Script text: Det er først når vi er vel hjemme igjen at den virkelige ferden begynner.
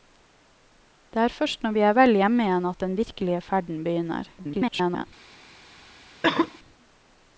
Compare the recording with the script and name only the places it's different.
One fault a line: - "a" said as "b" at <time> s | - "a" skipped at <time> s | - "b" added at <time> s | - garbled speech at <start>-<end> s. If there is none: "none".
- garbled speech at 4.4-5.1 s